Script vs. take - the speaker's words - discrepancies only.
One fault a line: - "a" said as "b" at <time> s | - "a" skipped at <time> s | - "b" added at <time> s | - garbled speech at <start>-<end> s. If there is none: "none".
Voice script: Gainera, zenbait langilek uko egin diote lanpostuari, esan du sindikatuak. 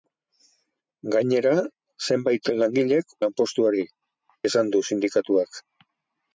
- "uko egin diote" skipped at 3.1 s